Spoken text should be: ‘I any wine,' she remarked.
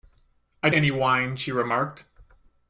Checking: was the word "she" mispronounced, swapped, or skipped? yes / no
no